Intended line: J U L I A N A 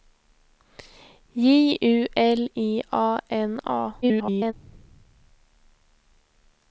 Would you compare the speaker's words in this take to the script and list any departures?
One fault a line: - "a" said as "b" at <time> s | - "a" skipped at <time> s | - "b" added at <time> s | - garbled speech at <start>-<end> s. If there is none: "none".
- garbled speech at 4.0-4.5 s